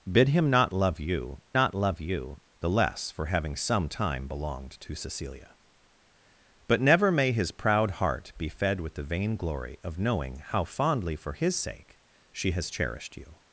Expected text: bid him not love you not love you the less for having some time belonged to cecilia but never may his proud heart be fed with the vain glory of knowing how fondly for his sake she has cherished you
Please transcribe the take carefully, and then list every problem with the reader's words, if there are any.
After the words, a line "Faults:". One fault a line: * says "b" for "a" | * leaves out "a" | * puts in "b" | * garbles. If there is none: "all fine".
bid him not love you not love you the less for having some time belonged to cecilia but never may his proud heart be fed with the vain glory of knowing how fondly for his sake she has cherished you
Faults:
all fine